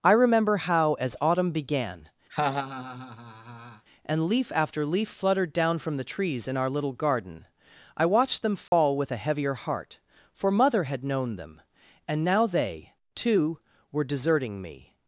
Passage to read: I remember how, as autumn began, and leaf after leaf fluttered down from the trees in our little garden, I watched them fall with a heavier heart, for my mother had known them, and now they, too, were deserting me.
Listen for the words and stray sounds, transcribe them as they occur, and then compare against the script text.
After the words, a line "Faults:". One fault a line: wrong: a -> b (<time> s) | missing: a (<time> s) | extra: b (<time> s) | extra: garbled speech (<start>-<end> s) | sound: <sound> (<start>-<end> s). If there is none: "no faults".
I remember how, as autumn began, and leaf after leaf fluttered down from the trees in our little garden, I watched them fall with a heavier heart, for mother had known them, and now they, too, were deserting me.
Faults:
sound: laugh (2.3-3.8 s)
sound: dropout (8.7-8.7 s)
missing: my (10.5 s)